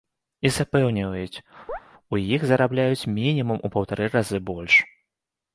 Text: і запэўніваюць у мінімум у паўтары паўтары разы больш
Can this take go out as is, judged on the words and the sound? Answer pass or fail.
fail